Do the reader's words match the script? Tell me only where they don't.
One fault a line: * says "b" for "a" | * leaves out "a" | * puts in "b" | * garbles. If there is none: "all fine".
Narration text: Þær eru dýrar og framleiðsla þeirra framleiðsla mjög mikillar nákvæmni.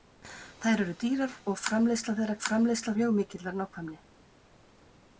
all fine